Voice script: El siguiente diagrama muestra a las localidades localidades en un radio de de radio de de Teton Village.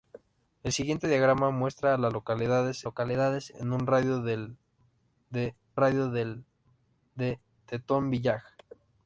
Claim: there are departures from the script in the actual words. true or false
false